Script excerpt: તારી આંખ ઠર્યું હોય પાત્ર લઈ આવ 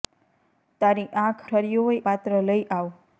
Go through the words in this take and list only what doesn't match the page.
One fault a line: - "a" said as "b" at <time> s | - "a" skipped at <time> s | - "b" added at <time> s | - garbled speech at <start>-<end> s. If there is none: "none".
none